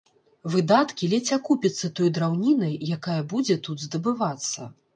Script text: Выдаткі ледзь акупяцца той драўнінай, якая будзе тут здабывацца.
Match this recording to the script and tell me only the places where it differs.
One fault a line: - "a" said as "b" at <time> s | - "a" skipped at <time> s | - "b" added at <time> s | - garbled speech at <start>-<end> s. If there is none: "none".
none